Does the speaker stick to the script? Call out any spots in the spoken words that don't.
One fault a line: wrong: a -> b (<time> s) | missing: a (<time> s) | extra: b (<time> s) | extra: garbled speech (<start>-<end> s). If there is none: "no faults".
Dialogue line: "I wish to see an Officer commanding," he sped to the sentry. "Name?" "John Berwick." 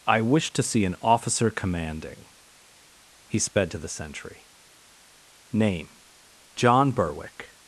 no faults